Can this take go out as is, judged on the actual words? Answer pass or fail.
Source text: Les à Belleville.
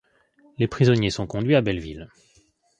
fail